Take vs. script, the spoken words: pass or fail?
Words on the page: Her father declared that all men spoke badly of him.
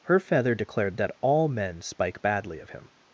fail